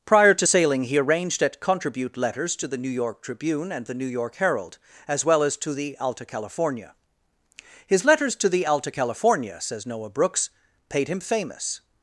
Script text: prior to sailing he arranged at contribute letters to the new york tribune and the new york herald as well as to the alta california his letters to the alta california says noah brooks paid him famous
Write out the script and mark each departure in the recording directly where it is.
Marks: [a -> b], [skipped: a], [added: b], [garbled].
prior to sailing he arranged at contribute letters to the new york tribune and the new york herald as well as to the alta california his letters to the alta california says noah brooks paid him famous